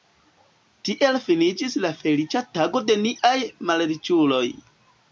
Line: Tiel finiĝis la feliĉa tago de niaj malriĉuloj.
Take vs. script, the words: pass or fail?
pass